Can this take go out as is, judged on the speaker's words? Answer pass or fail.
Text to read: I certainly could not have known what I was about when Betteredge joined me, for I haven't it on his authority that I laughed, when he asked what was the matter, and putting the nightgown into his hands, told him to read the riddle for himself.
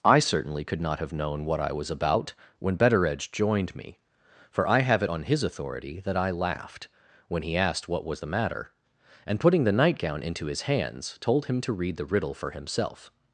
fail